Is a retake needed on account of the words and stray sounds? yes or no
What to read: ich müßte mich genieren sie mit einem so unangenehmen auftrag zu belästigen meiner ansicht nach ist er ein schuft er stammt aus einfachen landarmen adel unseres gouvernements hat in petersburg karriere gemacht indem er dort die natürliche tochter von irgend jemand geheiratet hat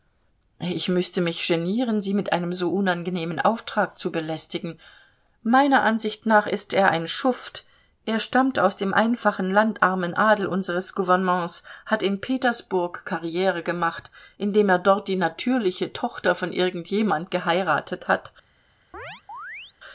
yes